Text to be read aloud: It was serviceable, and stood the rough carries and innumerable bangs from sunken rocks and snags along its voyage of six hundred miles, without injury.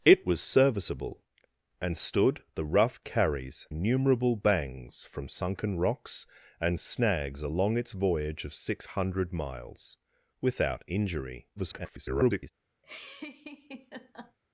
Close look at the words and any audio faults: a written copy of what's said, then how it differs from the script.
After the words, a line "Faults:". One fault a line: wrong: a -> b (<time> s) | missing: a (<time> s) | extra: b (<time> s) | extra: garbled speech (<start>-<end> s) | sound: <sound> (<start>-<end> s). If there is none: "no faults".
It was serviceable, and stood the rough carries innumerable bangs from sunken rocks and snags along its voyage of six hundred miles, without injury. [garbled]
Faults:
missing: and (3.7 s)
extra: garbled speech (11.6-12.5 s)
sound: laugh (12.8-14.4 s)